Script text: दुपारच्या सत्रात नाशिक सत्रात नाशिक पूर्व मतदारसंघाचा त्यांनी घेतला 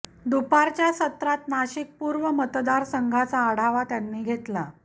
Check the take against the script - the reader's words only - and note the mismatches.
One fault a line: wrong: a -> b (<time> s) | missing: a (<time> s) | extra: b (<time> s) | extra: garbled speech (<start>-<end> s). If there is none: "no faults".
missing: सत्रात नाशिक (1.9 s)
extra: आढावा (3.4 s)